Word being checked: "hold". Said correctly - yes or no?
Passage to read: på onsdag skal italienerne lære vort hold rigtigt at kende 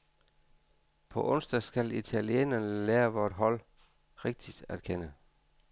yes